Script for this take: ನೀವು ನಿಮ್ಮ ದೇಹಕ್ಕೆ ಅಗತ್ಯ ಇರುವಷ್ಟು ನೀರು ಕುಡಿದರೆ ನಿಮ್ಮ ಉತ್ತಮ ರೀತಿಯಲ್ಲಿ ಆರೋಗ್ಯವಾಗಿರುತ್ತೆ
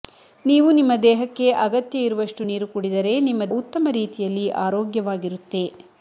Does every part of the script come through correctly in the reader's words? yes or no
yes